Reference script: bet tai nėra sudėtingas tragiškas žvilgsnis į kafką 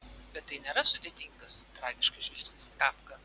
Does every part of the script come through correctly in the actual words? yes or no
yes